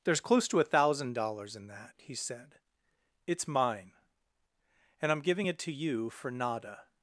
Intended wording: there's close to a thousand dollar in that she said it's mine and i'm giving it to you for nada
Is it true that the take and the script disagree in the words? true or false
true